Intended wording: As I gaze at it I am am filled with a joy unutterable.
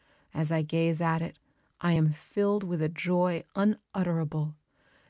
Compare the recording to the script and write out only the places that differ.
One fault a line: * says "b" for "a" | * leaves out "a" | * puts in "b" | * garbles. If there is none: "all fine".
* leaves out "am"